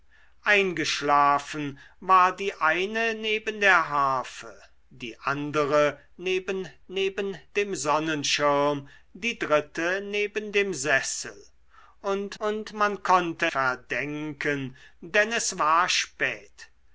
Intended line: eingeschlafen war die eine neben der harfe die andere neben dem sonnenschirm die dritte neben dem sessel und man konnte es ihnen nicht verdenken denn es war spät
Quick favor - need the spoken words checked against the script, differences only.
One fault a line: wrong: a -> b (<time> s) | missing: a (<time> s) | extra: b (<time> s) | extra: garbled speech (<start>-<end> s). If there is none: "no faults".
extra: neben (6.9 s)
extra: und (12.4 s)
missing: es ihnen nicht (13.5 s)